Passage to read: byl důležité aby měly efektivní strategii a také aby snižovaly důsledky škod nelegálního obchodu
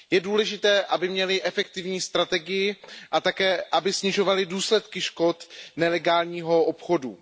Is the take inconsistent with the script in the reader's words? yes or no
yes